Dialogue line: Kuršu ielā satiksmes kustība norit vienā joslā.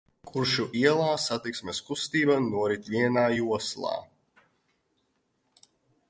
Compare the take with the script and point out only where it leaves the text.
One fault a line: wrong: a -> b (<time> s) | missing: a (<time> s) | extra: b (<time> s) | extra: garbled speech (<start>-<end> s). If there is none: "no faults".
no faults